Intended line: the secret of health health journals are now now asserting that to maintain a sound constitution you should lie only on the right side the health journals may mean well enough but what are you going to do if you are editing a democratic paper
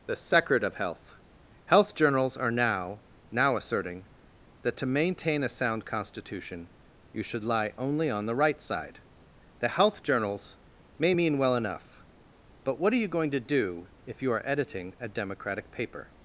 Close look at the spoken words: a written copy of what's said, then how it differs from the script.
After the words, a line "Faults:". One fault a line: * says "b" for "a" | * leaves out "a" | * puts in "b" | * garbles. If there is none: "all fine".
the secret of health health journals are now now asserting that to maintain a sound constitution you should lie only on the right side the health journals may mean well enough but what are you going to do if you are editing a democratic paper
Faults:
all fine